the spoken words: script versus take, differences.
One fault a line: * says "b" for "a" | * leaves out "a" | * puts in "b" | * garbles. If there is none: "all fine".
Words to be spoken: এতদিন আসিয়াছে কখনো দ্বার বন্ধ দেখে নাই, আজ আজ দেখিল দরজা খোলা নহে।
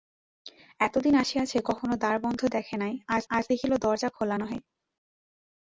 all fine